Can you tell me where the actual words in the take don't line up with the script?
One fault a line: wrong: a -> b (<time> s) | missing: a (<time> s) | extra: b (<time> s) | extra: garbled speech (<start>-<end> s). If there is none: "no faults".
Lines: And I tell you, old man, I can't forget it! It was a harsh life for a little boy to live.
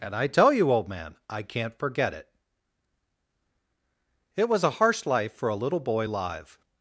missing: to (6.1 s)